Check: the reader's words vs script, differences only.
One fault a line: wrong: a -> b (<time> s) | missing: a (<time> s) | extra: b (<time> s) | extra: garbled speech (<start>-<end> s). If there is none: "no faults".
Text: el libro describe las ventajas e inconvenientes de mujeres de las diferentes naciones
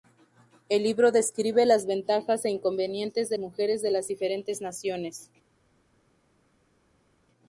no faults